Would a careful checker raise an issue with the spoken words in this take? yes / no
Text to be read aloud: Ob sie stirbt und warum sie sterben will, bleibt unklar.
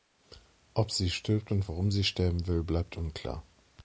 no